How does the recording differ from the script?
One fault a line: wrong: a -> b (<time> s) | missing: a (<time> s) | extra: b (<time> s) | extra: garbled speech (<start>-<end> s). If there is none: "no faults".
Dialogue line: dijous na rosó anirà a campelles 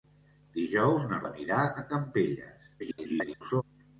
missing: rosó (1.2 s)
extra: garbled speech (2.8-3.6 s)